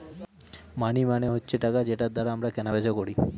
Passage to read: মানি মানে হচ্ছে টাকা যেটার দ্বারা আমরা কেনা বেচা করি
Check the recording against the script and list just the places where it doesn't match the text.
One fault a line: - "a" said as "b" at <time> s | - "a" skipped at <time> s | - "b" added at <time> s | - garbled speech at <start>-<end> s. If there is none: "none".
none